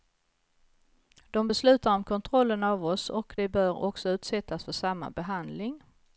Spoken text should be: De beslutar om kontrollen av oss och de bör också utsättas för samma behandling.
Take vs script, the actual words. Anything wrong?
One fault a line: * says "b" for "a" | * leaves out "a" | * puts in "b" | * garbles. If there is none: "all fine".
all fine